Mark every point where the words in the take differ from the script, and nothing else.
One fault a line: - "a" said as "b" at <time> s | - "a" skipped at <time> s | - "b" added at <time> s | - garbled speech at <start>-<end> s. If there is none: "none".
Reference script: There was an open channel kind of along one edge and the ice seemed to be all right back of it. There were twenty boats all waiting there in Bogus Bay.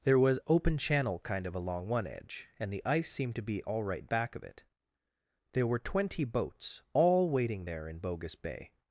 - "an" skipped at 0.4 s